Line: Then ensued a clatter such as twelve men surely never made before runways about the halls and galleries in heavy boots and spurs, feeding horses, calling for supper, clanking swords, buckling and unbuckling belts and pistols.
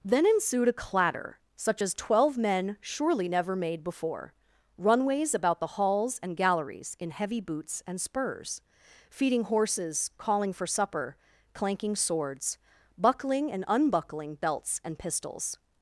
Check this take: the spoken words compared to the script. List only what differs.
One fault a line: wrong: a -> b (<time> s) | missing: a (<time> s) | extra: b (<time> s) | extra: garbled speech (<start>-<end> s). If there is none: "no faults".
no faults